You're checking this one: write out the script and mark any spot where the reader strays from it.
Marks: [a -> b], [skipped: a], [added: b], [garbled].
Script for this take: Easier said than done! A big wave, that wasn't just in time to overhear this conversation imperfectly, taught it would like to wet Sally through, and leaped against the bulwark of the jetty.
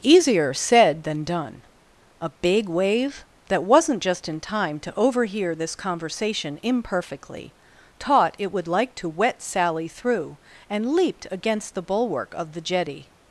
Easier said than done! A big wave, that wasn't just in time to overhear this conversation imperfectly, taught it would like to wet Sally through, and leaped against the bulwark of the jetty.